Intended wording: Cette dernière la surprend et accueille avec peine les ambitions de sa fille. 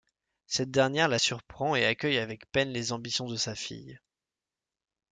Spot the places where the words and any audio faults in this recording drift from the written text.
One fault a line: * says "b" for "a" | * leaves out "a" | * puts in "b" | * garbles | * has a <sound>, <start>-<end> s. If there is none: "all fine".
all fine